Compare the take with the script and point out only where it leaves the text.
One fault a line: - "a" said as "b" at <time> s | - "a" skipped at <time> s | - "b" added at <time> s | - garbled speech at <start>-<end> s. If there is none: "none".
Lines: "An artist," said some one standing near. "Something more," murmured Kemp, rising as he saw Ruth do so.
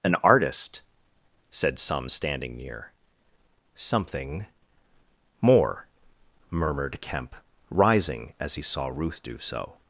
- "one" skipped at 2.1 s